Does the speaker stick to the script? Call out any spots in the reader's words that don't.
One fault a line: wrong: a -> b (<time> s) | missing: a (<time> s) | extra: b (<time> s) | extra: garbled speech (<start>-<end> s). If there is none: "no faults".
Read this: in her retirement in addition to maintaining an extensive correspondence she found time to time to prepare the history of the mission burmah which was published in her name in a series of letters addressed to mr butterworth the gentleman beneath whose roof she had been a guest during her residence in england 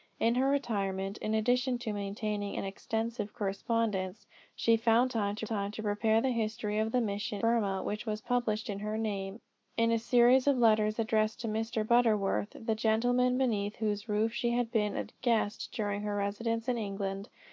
no faults